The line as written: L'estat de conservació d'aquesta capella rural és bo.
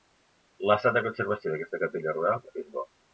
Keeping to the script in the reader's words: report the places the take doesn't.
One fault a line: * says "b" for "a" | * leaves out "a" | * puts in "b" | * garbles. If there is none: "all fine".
all fine